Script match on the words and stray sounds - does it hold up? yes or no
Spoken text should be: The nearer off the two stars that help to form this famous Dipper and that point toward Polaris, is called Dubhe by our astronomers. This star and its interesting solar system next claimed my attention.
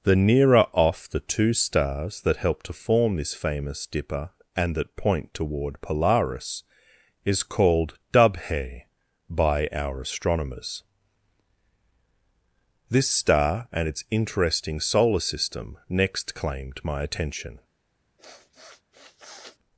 no